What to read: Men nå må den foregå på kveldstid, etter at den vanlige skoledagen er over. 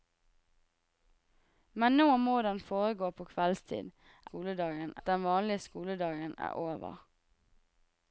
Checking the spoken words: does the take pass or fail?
fail